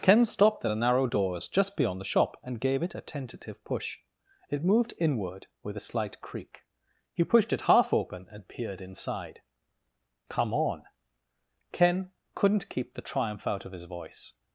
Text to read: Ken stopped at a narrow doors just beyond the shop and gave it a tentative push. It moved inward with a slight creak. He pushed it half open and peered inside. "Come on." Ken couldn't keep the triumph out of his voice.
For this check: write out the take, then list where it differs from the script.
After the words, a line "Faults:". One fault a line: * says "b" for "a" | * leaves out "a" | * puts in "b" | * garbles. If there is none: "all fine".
Ken stopped at a narrow doors just beyond the shop and gave it a tentative push. It moved inward with a slight creak. He pushed it half open and peered inside. "Come on." Ken couldn't keep the triumph out of his voice.
Faults:
all fine